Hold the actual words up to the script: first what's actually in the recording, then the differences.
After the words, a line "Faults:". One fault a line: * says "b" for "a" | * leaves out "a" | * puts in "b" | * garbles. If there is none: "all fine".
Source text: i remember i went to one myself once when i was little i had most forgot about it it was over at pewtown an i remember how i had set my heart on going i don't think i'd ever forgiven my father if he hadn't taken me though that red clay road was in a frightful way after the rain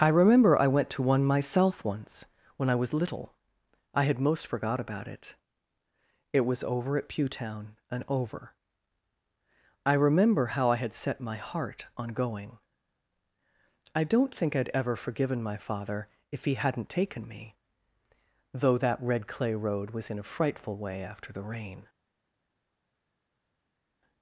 i remember i went to one myself once when i was little i had most forgot about it it was over at pewtown and over i remember how i had set my heart on going i don't think i'd ever forgiven my father if he hadn't taken me though that red clay road was in a frightful way after the rain
Faults:
* says "and over" for "an"